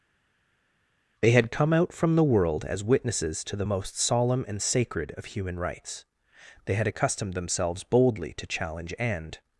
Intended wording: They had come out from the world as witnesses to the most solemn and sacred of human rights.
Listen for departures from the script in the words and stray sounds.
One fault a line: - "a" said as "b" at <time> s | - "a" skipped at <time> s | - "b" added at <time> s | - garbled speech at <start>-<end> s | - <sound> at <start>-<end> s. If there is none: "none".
- "They had accustomed themselves boldly to challenge and" added at 6.7 s